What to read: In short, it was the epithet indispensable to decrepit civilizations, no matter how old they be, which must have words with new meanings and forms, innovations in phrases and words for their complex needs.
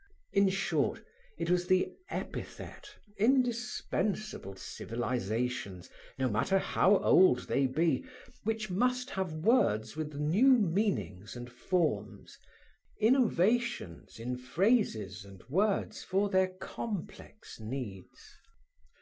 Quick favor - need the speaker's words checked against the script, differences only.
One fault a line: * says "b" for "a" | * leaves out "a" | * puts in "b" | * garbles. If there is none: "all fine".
* leaves out "to decrepit"